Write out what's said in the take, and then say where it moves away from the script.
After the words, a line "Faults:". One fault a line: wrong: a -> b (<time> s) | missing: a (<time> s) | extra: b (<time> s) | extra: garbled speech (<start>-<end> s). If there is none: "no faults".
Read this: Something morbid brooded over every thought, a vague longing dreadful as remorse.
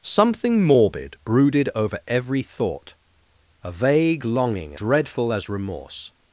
Something morbid brooded over every thought, a vague longing dreadful as remorse.
Faults:
no faults